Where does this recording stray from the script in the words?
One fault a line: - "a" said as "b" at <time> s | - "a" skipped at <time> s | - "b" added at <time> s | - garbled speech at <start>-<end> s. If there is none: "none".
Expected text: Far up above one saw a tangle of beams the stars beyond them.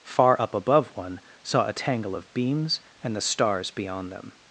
- "and" added at 3.0 s